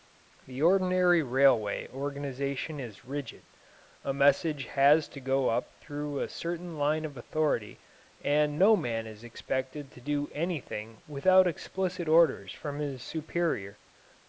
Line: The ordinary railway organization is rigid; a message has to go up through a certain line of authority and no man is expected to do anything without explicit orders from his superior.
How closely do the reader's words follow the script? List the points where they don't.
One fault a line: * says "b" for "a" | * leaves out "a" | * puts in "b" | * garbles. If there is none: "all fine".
all fine